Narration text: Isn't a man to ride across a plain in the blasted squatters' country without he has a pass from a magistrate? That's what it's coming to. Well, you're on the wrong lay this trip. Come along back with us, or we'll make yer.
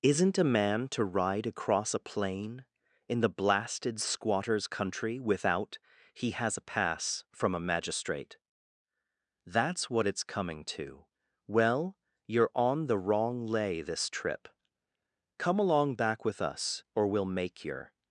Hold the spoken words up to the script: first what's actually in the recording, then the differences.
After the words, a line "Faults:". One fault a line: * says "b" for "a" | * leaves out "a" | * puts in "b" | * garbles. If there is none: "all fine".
Isn't a man to ride across a plain in the blasted squatters' country without he has a pass from a magistrate? That's what it's coming to. Well, you're on the wrong lay this trip. Come along back with us, or we'll make yer.
Faults:
all fine